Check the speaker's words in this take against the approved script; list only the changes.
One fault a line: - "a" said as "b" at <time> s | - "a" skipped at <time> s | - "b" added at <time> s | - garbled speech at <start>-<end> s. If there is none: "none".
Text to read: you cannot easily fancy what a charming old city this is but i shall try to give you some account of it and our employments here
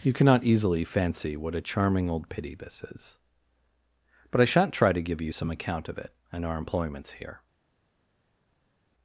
- "city" said as "pity" at 2.3 s
- "shall" said as "shan't" at 4.5 s